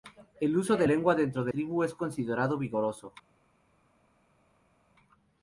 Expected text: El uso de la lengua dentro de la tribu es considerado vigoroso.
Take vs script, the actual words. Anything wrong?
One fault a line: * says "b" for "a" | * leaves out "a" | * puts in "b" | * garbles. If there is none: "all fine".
* leaves out "la"
* leaves out "la"